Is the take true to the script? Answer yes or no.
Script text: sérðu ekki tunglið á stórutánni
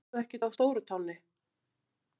no